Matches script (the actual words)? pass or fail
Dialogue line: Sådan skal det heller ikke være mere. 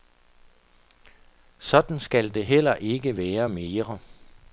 pass